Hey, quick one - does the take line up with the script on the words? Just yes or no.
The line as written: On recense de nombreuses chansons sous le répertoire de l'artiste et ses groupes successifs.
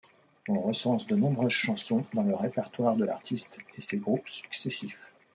no